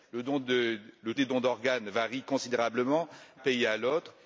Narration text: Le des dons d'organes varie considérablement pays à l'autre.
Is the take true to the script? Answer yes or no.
yes